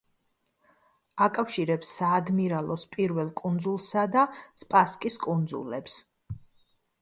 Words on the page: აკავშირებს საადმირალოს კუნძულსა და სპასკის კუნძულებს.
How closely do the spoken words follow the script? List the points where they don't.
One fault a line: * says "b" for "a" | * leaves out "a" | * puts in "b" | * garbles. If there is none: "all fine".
* puts in "პირველ"